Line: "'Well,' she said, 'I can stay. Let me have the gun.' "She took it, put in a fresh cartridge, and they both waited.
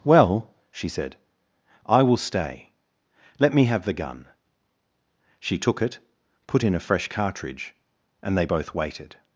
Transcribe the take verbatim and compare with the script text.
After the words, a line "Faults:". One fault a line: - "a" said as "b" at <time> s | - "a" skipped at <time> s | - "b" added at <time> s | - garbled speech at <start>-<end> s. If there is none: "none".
"'Well,' she said, 'I will stay. Let me have the gun.' "She took it, put in a fresh cartridge, and they both waited.
Faults:
- "can" said as "will" at 2.0 s